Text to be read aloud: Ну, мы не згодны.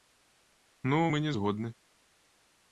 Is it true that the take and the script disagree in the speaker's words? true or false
false